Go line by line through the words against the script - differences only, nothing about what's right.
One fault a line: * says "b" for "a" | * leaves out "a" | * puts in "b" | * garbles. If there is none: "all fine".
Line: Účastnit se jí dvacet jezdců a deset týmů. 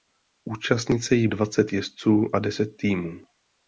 all fine